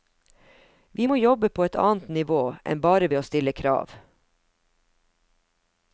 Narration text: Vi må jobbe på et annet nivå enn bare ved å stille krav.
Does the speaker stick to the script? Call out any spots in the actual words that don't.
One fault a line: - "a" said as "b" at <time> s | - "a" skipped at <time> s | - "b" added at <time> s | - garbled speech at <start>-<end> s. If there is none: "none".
none